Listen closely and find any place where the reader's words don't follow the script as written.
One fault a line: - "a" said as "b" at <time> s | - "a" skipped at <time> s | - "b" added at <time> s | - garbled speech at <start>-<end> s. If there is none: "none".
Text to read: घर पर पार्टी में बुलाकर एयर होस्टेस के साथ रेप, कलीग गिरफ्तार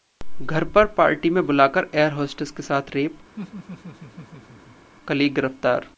none